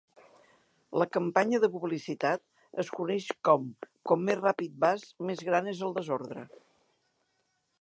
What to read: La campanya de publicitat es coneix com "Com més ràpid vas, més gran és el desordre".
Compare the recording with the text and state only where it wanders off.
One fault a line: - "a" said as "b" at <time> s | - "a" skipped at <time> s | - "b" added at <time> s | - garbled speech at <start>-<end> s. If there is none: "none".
none